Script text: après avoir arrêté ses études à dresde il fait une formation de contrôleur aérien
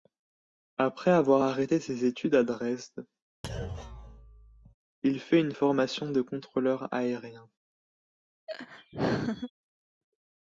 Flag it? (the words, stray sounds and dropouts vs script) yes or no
yes